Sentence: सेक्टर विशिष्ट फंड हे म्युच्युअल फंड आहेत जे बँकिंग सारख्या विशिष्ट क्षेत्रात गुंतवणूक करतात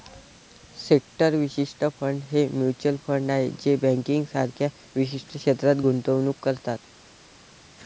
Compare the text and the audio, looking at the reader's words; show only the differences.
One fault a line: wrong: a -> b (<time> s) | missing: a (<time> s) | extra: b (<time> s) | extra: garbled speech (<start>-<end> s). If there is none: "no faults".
no faults